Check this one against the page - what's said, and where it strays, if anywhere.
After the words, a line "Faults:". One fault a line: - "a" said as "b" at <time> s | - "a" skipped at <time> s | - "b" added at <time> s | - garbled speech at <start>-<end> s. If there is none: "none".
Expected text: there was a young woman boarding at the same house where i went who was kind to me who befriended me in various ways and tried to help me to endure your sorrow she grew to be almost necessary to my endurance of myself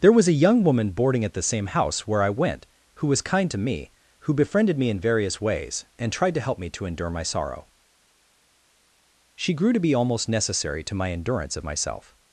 there was a young woman boarding at the same house where i went who was kind to me who befriended me in various ways and tried to help me to endure my sorrow she grew to be almost necessary to my endurance of myself
Faults:
- "your" said as "my" at 7.1 s